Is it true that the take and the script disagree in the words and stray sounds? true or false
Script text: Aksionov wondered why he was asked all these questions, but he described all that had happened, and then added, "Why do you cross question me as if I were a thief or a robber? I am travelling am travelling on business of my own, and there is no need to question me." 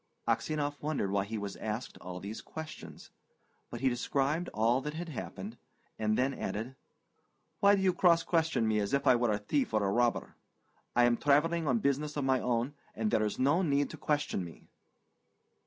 true